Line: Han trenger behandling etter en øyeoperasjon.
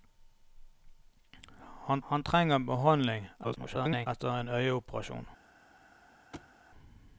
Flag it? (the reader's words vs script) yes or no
yes